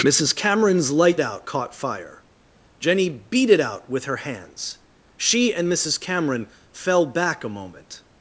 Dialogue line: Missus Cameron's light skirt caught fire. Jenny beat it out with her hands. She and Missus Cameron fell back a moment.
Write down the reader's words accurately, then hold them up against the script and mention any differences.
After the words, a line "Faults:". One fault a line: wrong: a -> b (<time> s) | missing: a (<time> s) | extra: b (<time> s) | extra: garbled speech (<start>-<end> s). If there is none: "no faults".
Missus Cameron's light out caught fire. Jenny beat it out with her hands. She and Missus Cameron fell back a moment.
Faults:
wrong: skirt -> out (1.2 s)